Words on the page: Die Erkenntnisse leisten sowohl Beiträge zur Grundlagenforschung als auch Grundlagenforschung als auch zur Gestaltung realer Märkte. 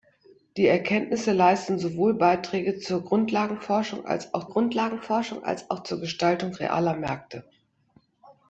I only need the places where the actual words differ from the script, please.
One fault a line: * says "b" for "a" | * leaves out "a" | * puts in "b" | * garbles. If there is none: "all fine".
all fine